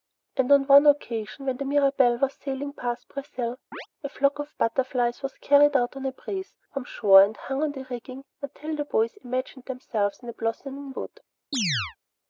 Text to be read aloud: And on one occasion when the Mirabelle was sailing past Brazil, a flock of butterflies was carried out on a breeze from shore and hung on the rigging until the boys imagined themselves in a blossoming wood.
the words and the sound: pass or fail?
fail